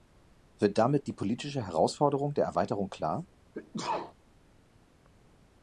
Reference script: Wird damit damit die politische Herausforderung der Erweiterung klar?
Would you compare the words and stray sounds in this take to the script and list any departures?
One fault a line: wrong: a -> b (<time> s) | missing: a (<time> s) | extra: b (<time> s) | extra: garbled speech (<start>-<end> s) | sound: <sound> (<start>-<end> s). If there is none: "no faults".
missing: damit (1.1 s)
sound: sneeze (3.5-4.1 s)